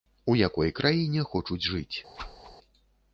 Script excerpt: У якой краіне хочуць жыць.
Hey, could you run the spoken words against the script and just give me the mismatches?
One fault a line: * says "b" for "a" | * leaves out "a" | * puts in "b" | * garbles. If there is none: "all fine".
all fine